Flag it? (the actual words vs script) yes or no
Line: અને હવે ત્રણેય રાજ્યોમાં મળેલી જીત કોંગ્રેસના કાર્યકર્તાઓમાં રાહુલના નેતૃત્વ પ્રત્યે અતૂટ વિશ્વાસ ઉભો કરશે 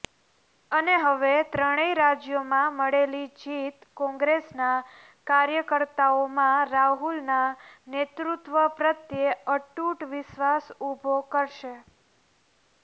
no